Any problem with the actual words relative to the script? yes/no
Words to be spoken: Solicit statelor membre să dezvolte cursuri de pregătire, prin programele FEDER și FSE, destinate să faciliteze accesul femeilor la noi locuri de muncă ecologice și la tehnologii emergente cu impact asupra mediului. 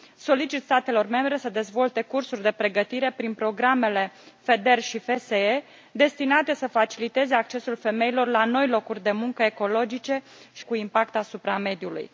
yes